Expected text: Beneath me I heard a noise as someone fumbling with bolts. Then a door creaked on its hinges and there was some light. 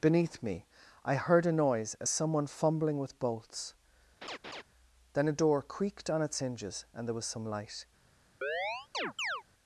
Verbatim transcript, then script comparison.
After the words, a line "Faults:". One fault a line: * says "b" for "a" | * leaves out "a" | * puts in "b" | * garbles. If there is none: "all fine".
Beneath me I heard a noise as someone fumbling with bolts. Then a door creaked on its hinges and there was some light.
Faults:
all fine